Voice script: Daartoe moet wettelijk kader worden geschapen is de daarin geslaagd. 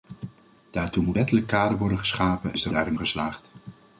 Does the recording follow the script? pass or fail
pass